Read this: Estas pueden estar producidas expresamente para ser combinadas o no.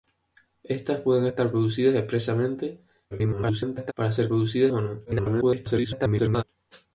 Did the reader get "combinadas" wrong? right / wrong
wrong